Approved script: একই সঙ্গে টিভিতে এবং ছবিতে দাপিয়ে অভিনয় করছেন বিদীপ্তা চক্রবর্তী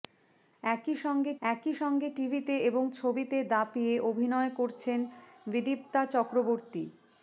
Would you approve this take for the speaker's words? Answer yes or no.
no